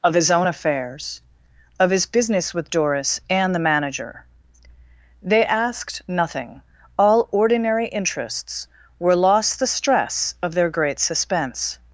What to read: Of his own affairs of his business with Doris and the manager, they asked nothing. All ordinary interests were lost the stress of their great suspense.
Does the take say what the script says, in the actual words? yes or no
yes